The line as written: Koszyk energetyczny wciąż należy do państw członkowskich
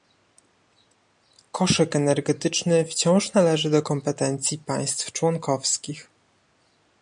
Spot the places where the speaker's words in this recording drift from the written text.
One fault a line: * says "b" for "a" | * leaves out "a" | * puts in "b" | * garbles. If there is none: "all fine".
* puts in "kompetencji"